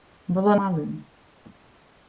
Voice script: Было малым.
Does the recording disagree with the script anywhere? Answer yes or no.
no